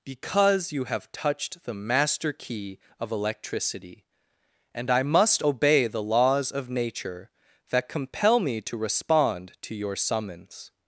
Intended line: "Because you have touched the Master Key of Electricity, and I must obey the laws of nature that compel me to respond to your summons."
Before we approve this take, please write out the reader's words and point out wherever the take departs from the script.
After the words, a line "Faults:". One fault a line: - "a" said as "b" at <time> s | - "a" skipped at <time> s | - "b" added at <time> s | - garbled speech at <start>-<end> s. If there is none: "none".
"Because you have touched the Master Key of Electricity, and I must obey the laws of nature that compel me to respond to your summons."
Faults:
none